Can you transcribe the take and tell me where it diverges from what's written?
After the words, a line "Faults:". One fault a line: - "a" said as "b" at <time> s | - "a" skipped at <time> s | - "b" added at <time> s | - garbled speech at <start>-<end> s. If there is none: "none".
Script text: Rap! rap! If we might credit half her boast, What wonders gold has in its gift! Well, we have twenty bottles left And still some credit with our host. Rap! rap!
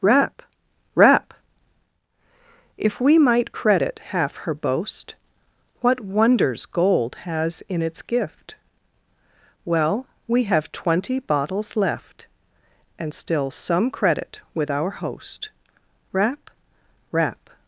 Rap! rap! If we might credit half her boast, What wonders gold has in its gift! Well, we have twenty bottles left And still some credit with our host. Rap! rap!
Faults:
none